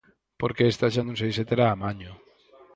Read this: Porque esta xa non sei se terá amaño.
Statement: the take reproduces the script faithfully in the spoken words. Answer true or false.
true